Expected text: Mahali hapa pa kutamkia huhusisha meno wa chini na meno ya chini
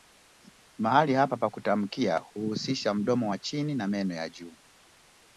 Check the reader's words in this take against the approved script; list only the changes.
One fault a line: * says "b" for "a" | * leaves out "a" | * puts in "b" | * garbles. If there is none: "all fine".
* says "mdomo" for "meno"
* says "juu" for "chini"